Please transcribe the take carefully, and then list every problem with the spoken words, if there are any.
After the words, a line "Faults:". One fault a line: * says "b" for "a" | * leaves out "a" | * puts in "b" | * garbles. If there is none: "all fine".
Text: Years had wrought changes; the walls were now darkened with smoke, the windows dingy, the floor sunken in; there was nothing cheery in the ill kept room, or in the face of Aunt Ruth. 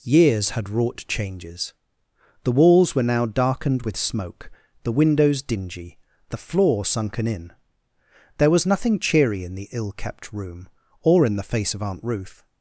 Years had wrought changes; the walls were now darkened with smoke, the windows dingy, the floor sunken in; there was nothing cheery in the ill kept room, or in the face of Aunt Ruth.
Faults:
all fine